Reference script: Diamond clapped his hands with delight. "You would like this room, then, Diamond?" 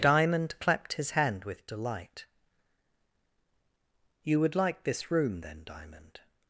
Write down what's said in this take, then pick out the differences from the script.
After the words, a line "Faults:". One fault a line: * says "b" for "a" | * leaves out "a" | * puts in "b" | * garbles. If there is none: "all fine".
Diamond clapped his hand with delight. "You would like this room, then, Diamond?"
Faults:
* says "hand" for "hands"